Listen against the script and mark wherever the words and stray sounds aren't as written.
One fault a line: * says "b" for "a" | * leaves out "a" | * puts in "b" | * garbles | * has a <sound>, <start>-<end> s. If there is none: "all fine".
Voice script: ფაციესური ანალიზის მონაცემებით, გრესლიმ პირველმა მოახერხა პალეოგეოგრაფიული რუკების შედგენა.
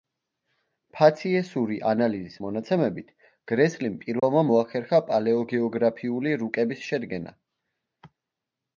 * has a dropout, 4.2-4.2 s